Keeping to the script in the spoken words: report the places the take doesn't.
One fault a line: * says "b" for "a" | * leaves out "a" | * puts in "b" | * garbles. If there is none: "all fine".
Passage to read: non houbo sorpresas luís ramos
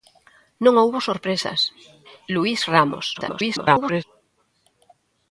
* garbles